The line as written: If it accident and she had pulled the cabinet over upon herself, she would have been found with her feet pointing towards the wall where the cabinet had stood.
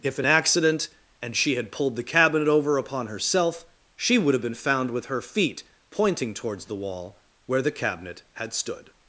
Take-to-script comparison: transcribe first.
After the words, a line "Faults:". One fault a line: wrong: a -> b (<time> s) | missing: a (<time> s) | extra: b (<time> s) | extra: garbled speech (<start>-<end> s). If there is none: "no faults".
If it accident and she had pulled the cabinet over upon herself, she would have been found with her feet pointing towards the wall where the cabinet had stood.
Faults:
no faults